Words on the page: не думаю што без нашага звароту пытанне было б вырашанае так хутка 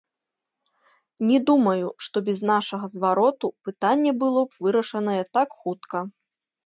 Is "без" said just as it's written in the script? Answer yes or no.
yes